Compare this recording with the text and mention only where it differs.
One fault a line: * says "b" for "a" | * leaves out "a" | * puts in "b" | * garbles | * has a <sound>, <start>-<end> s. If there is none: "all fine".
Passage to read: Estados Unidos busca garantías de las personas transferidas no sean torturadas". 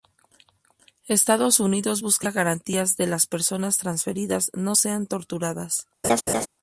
* has a laugh, 6.0-6.5 s